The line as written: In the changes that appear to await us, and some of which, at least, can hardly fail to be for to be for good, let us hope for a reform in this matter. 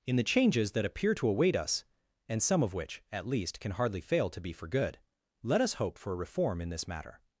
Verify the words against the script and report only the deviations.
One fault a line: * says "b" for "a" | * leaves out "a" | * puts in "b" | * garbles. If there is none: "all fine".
* leaves out "to be for"